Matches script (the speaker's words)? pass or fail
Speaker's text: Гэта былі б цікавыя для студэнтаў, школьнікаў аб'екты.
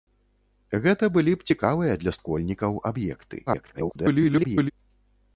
fail